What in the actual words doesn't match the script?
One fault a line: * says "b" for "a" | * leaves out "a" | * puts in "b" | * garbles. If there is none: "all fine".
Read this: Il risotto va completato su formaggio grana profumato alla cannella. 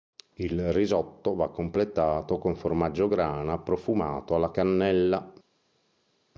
* says "con" for "su"